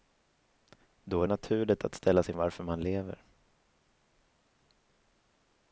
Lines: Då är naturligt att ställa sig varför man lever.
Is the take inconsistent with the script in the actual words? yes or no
no